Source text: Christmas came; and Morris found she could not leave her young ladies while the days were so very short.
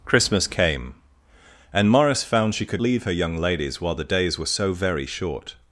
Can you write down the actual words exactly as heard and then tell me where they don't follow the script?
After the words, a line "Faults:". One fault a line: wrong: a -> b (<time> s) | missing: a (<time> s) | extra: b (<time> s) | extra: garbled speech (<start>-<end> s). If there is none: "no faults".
Christmas came; and Morris found she could leave her young ladies while the days were so very short.
Faults:
missing: not (2.8 s)